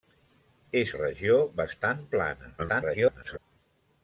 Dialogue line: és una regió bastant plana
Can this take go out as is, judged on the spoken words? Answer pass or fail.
fail